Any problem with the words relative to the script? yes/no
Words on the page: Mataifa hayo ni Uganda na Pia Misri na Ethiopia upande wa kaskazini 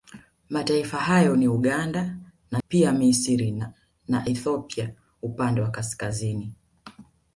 no